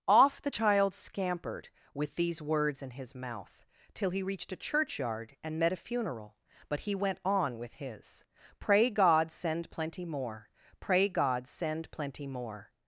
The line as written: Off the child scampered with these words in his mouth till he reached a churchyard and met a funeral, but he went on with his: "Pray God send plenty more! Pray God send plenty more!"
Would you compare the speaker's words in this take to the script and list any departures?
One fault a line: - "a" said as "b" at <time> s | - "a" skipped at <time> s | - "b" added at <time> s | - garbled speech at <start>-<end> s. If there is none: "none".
none